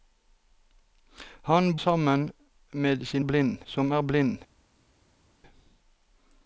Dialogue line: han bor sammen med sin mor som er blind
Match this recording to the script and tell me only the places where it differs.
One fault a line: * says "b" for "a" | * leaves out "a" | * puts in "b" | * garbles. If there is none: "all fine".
* leaves out "bor"
* says "blind" for "mor"